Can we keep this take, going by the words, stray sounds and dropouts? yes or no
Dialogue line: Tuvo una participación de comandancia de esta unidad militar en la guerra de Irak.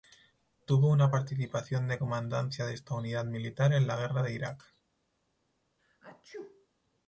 no